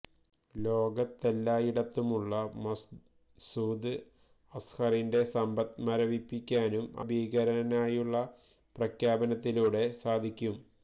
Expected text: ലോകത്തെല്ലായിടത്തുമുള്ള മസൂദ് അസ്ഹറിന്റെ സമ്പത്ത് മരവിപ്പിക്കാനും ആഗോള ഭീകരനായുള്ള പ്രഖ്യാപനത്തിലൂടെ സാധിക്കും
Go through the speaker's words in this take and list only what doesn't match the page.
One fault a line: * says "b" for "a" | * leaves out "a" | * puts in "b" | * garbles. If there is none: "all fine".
* leaves out "ആഗോള"